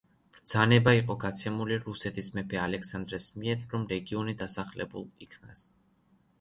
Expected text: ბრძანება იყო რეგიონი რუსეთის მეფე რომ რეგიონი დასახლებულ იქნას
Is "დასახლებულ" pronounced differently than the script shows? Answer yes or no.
no